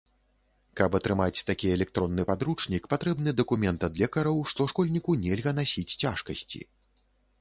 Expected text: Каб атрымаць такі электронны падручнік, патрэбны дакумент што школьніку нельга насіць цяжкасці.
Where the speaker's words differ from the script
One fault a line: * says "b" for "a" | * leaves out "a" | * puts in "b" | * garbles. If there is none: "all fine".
* puts in "ад лекараў"